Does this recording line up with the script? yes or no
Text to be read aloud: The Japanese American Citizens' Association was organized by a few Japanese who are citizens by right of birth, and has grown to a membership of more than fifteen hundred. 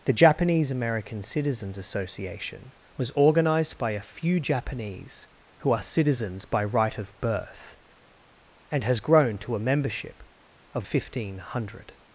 no